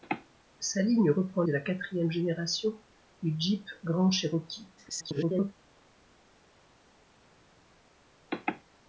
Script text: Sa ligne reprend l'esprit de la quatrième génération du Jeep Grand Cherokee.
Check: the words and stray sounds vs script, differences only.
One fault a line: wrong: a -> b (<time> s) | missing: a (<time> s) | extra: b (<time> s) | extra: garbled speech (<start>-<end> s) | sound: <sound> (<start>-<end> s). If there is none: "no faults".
missing: l'esprit (1.4 s)
extra: garbled speech (4.8-5.5 s)